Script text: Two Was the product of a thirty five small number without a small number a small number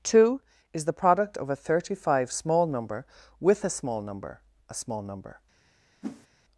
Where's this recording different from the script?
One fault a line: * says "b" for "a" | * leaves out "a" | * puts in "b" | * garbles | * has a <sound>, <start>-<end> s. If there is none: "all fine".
* says "Is" for "Was"
* says "with" for "without"
* has a whoosh, 6.0-6.3 s